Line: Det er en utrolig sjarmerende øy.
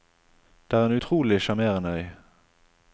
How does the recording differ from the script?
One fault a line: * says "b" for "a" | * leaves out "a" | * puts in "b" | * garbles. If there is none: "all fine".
all fine